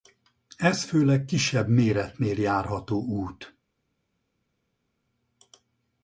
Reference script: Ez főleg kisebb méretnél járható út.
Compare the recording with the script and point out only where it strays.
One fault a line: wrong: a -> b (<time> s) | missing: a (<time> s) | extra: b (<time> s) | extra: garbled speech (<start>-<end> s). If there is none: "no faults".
no faults